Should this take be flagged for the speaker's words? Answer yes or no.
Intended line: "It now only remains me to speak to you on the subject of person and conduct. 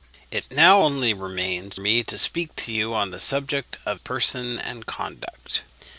no